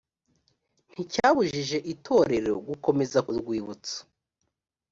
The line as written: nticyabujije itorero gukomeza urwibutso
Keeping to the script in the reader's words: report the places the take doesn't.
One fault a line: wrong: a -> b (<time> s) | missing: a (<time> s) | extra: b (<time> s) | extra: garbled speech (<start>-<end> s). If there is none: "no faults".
no faults